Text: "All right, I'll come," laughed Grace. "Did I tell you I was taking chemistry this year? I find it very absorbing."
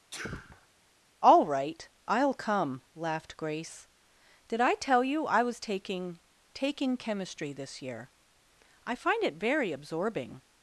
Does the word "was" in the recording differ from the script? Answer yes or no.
no